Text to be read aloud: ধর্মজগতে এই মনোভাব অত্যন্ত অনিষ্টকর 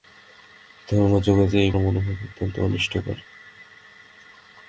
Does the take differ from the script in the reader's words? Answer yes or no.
no